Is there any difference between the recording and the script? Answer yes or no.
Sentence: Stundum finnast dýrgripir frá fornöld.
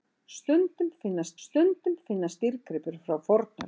yes